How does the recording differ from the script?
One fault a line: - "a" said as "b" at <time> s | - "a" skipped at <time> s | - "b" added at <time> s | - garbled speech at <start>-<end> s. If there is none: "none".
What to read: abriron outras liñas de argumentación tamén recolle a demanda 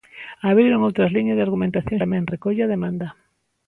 none